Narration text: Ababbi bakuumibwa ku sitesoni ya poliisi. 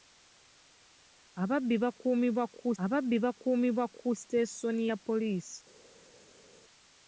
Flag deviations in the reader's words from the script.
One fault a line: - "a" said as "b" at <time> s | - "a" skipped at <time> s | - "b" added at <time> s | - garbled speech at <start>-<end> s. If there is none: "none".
- "ababbi bakuumibwa ku" added at 2.8 s